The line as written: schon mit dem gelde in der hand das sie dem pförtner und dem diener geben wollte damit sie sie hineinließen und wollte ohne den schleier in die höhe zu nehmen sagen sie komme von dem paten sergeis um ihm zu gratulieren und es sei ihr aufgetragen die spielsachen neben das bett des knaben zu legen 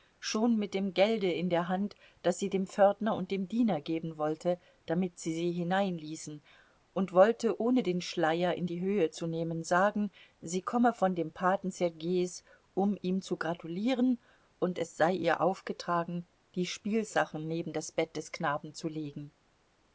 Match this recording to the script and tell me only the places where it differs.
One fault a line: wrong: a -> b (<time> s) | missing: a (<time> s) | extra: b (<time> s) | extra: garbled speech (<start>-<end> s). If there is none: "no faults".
no faults